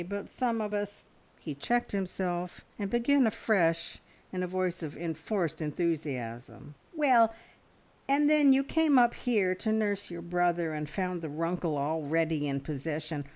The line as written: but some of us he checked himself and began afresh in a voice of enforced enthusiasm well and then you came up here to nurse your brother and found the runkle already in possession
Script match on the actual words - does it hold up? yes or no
yes